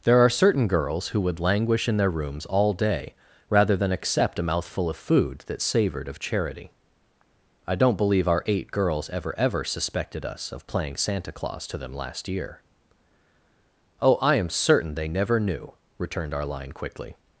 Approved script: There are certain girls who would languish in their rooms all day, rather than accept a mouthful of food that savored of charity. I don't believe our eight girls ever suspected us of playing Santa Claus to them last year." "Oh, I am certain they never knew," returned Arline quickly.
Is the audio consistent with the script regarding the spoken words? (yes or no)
no